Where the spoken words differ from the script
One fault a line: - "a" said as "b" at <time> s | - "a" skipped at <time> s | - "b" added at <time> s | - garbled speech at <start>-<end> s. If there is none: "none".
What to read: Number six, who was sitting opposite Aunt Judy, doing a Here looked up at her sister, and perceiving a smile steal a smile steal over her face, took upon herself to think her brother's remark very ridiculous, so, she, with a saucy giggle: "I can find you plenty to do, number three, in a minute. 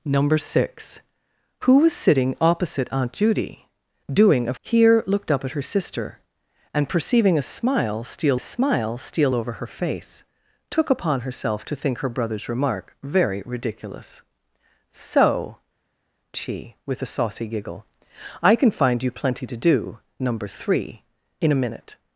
none